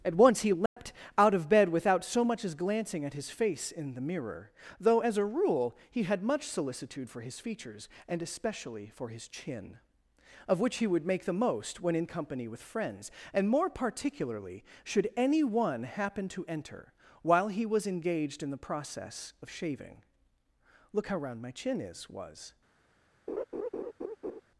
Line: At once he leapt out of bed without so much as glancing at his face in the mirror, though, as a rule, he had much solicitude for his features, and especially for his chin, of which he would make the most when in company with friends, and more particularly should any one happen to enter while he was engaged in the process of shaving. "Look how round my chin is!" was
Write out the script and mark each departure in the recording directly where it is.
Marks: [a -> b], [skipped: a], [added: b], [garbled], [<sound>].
At once he leapt [dropout] out of bed without so much as glancing at his face in the mirror, though, as a rule, he had much solicitude for his features, and especially for his chin, of which he would make the most when in company with friends, and more particularly should any one happen to enter while he was engaged in the process of shaving. "Look how round my chin is!" was [laugh]